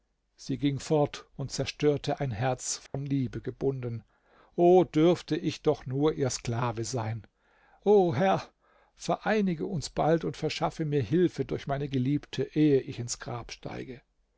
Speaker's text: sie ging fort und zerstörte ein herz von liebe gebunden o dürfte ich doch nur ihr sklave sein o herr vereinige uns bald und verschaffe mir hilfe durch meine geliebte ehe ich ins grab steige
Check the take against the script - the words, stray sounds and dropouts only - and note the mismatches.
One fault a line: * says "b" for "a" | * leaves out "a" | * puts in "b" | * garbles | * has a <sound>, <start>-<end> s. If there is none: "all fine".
* has a dropout, 2.9-2.9 s